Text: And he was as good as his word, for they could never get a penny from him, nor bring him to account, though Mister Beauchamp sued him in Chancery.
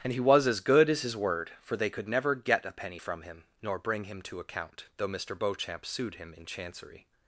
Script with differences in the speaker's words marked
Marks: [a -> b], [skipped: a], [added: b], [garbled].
And he was as good as his word, for they could never get a penny from him, nor bring him to account, though Mister Beauchamp sued him in Chancery.